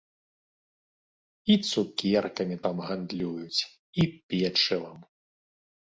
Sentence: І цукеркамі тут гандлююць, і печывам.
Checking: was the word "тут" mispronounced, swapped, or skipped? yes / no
yes